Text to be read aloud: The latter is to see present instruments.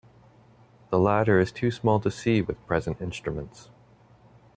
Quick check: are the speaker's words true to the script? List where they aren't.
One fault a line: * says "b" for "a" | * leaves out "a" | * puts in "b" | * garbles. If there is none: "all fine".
* puts in "too small"
* puts in "with"